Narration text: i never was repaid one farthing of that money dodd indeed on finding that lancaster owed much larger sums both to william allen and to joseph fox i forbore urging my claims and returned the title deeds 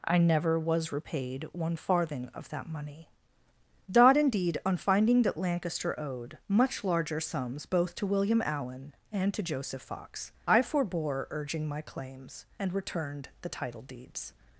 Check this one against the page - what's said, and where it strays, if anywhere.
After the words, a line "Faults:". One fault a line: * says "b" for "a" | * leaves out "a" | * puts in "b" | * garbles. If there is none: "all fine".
i never was repaid one farthing of that money dodd indeed on finding that lancaster owed much larger sums both to william allen and to joseph fox i forbore urging my claims and returned the title deeds
Faults:
all fine